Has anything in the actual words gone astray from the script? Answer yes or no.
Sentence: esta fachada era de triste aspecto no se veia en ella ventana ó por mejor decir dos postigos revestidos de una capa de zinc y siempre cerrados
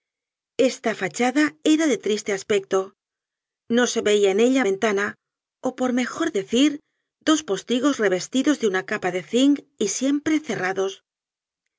no